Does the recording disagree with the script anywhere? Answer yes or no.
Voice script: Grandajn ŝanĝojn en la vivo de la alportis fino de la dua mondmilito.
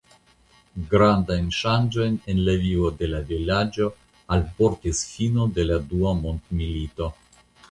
yes